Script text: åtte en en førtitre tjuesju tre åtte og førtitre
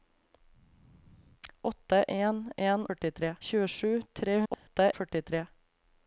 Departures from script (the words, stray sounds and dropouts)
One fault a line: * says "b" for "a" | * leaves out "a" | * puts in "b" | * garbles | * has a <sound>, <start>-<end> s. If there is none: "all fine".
* has a dropout, 4.5-4.7 s